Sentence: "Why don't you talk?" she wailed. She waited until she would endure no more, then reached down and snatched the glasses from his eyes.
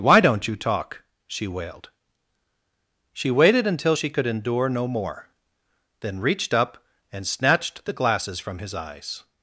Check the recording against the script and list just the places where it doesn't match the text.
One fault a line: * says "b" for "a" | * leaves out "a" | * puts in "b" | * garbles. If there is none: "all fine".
* says "could" for "would"
* says "up" for "down"